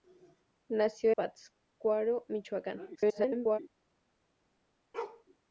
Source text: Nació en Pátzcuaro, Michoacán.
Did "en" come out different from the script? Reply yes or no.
yes